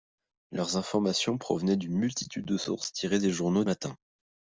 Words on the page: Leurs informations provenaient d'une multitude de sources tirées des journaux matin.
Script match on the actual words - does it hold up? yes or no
yes